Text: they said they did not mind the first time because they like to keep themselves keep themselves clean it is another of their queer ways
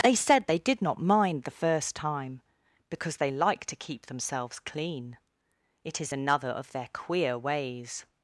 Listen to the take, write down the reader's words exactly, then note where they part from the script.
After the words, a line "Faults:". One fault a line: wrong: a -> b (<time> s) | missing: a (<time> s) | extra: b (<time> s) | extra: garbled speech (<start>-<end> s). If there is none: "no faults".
they said they did not mind the first time because they like to keep themselves clean it is another of their queer ways
Faults:
missing: keep themselves (4.6 s)